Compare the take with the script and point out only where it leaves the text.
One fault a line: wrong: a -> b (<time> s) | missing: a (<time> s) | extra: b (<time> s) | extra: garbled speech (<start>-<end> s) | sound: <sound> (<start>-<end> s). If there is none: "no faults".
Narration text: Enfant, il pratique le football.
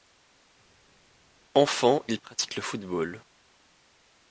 no faults